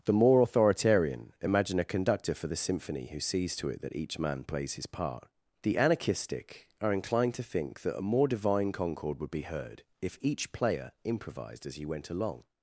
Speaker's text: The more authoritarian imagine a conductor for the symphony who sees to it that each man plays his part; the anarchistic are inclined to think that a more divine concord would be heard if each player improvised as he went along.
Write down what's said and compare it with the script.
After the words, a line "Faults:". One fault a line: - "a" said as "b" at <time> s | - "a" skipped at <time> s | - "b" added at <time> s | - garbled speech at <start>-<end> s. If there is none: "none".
The more authoritarian imagine a conductor for the symphony who sees to it that each man plays his part; the anarchistic are inclined to think that a more divine concord would be heard if each player improvised as he went along.
Faults:
none